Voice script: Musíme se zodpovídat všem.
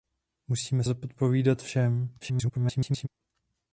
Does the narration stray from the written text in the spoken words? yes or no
yes